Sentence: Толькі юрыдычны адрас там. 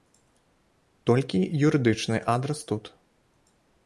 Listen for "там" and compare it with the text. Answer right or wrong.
wrong